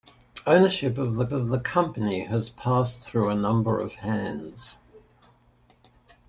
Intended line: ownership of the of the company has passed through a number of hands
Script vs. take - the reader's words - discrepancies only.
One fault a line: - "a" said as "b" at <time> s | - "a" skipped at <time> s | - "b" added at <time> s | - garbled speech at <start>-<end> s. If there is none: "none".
none